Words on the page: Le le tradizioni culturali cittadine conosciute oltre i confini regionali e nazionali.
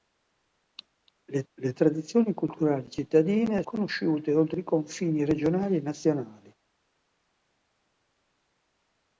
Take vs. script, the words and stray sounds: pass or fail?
pass